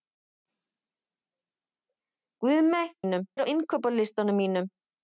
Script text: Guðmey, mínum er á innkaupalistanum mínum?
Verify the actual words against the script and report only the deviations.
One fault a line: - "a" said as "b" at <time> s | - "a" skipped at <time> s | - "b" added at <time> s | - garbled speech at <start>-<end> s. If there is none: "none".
none